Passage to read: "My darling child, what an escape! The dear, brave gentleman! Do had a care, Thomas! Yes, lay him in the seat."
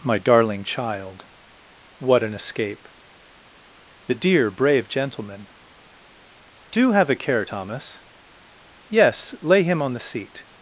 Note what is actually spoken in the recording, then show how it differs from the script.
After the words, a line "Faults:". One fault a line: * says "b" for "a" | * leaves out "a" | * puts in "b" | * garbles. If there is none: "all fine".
"My darling child, what an escape! The dear, brave gentleman! Do have a care, Thomas! Yes, lay him on the seat."
Faults:
* says "have" for "had"
* says "on" for "in"